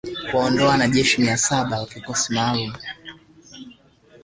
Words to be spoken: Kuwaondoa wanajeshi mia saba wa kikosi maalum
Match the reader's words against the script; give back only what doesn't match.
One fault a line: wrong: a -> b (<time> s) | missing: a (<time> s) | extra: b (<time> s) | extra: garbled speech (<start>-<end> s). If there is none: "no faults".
no faults